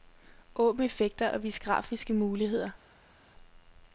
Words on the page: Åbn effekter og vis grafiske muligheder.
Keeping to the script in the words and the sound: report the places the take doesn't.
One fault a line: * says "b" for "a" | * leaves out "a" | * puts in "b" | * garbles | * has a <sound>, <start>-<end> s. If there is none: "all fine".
all fine